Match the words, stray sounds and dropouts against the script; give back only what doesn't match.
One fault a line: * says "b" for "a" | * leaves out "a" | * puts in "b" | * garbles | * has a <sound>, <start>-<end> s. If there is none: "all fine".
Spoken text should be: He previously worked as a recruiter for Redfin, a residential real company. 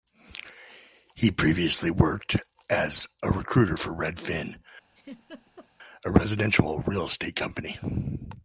* has a laugh, 4.9-5.7 s
* puts in "estate"